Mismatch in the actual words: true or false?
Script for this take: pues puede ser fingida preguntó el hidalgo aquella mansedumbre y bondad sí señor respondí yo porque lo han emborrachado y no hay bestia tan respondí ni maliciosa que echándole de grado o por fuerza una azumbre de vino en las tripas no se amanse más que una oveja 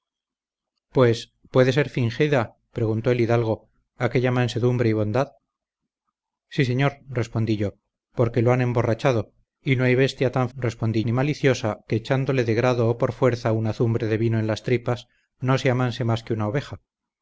false